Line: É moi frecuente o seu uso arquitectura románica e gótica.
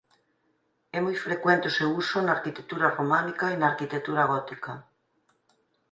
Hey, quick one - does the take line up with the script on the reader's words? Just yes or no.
no